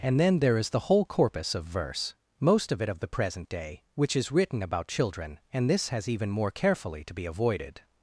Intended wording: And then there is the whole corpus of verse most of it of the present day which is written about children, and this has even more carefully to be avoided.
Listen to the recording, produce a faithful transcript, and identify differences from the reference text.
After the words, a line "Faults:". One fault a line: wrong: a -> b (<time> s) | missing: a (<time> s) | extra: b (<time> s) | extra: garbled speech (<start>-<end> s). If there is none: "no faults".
And then there is the whole corpus of verse most of it of the present day which is written about children, and this has even more carefully to be avoided.
Faults:
no faults